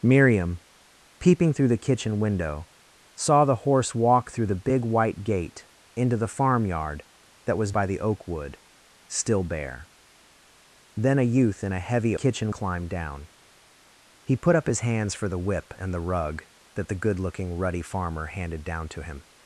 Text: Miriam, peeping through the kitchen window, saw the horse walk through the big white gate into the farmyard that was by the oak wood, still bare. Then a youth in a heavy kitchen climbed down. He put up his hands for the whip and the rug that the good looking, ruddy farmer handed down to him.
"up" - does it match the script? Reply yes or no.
yes